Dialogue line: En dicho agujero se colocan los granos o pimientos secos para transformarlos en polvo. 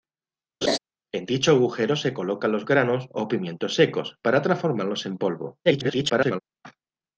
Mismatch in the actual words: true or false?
true